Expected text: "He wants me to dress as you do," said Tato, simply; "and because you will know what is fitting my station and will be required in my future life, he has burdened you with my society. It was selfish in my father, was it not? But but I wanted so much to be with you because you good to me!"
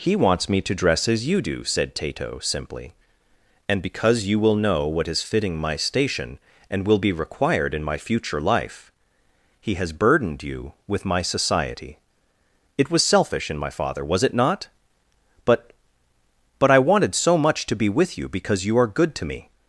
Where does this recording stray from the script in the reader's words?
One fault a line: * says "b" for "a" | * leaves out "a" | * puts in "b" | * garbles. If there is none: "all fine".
* puts in "are"